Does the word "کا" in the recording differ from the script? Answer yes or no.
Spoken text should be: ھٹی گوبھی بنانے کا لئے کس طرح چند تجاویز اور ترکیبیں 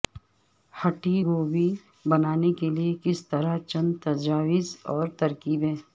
yes